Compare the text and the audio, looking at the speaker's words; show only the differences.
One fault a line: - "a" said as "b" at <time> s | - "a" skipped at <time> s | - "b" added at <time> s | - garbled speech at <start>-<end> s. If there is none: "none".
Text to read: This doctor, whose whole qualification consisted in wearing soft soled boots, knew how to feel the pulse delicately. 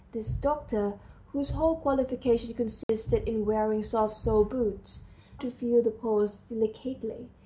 - "knew how" skipped at 5.0 s